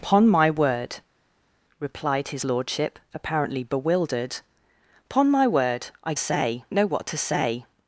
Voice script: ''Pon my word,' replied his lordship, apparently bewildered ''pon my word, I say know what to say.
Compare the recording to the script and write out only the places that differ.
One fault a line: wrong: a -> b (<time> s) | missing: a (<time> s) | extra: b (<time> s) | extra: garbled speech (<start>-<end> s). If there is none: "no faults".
no faults